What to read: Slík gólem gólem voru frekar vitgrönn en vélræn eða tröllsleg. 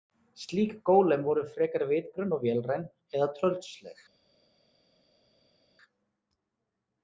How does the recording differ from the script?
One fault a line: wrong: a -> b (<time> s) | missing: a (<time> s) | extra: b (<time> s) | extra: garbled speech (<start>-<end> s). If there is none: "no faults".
missing: gólem (1.2 s)
wrong: en -> og (2.4 s)